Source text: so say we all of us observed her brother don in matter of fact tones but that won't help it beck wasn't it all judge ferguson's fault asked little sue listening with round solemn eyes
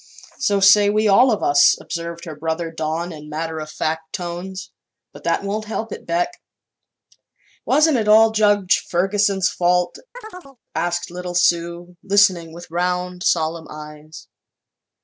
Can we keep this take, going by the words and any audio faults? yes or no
no